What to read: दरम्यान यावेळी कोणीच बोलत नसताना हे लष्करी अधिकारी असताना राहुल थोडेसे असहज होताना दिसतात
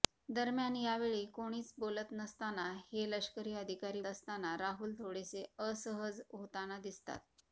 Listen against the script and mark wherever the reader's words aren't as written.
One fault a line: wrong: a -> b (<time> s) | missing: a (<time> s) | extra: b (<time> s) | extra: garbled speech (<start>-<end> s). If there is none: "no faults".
no faults